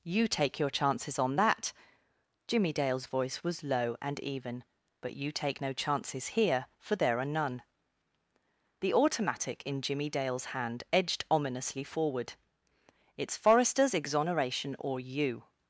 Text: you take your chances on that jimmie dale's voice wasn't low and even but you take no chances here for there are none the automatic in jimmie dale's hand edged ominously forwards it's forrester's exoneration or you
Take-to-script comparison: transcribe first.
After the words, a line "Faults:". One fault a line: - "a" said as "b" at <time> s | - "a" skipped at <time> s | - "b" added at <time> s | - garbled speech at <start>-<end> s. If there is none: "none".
you take your chances on that jimmie dale's voice was low and even but you take no chances here for there are none the automatic in jimmie dale's hand edged ominously forward it's forrester's exoneration or you
Faults:
- "wasn't" said as "was" at 3.4 s
- "forwards" said as "forward" at 11.8 s